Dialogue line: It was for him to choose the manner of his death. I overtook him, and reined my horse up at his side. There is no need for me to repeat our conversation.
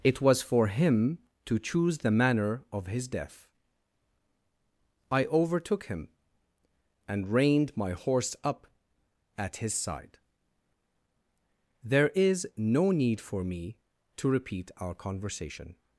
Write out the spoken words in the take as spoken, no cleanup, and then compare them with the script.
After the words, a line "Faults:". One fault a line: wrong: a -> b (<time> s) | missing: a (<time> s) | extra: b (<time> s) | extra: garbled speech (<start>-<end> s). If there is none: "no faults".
It was for him to choose the manner of his death. I overtook him, and reined my horse up at his side. There is no need for me to repeat our conversation.
Faults:
no faults